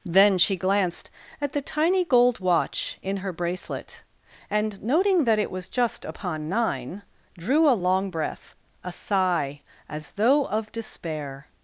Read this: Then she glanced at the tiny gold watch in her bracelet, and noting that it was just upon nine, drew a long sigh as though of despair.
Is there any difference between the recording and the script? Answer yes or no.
yes